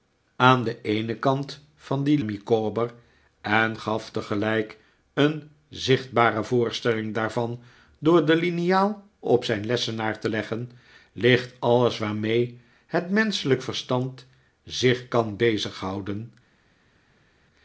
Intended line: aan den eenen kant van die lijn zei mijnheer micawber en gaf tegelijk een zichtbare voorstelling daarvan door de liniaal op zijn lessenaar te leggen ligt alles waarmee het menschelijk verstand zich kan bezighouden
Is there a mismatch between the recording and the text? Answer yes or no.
yes